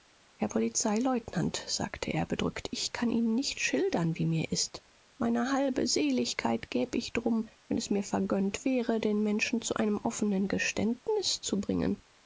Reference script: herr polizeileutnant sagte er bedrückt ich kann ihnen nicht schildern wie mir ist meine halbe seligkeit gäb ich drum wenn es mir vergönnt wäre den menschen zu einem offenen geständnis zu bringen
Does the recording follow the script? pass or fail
pass